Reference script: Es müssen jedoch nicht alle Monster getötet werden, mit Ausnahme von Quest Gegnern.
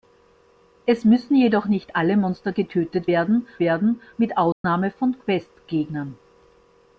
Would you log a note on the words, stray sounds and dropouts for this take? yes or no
yes